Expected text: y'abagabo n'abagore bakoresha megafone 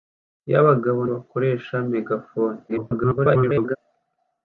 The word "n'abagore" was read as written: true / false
false